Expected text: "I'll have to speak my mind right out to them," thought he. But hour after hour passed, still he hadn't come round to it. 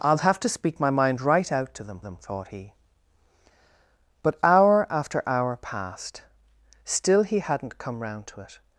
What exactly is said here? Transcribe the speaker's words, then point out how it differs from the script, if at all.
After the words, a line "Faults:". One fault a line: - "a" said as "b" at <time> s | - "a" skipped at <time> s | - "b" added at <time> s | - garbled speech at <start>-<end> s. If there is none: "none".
"I'll have to speak my mind right out to them them," thought he. But hour after hour passed, still he hadn't come round to it.
Faults:
- "them" added at 2.0 s